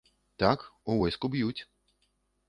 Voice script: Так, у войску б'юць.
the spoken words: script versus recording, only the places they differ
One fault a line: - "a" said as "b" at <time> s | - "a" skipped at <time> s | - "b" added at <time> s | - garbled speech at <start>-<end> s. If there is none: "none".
none